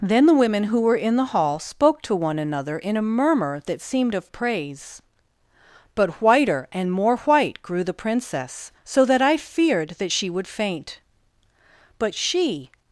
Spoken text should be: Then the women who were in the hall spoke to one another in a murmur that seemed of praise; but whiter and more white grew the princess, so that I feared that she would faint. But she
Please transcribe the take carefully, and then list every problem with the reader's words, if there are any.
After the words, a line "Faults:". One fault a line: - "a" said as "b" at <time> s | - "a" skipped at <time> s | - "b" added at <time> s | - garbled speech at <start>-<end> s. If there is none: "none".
Then the women who were in the hall spoke to one another in a murmur that seemed of praise; but whiter and more white grew the princess, so that I feared that she would faint. But she
Faults:
none